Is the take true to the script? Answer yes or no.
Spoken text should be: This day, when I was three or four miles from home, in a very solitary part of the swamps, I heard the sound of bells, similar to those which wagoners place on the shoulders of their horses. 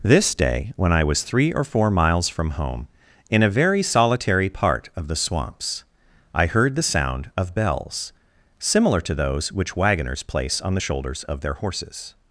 yes